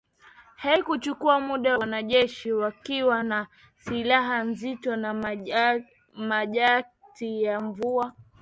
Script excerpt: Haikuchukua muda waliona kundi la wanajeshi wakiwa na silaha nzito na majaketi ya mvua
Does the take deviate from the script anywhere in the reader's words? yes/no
yes